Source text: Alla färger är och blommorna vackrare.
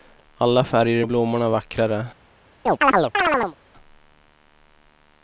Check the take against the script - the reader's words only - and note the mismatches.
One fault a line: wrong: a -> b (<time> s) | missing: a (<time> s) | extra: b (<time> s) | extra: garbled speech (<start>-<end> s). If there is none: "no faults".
no faults